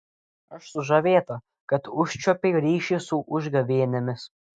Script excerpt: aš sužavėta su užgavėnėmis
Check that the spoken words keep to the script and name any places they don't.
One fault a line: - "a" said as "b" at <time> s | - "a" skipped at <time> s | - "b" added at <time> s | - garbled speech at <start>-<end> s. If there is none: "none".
- "kad užčiuopei ryšį" added at 1.7 s